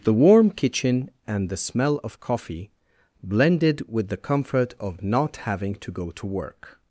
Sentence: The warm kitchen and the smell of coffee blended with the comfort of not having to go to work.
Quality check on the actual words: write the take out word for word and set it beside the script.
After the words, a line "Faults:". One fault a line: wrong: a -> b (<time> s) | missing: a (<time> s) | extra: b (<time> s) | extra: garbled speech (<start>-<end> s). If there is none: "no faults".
The warm kitchen and the smell of coffee blended with the comfort of not having to go to work.
Faults:
no faults